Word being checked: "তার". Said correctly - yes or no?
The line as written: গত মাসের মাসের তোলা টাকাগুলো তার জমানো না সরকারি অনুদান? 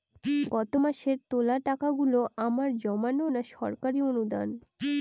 no